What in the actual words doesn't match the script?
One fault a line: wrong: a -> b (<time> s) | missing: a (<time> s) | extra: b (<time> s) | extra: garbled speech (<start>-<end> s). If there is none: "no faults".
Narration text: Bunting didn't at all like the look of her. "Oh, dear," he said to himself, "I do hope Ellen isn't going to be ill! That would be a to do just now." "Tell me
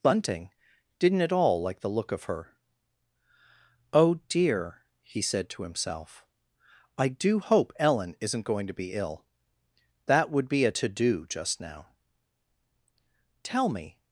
no faults